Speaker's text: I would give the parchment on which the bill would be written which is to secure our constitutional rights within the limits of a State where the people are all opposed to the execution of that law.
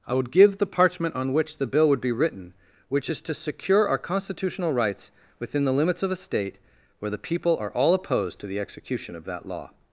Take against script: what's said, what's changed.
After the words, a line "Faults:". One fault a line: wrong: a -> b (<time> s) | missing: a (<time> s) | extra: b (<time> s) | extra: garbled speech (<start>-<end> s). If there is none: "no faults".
I would give the parchment on which the bill would be written which is to secure our constitutional rights within the limits of a State where the people are all opposed to the execution of that law.
Faults:
no faults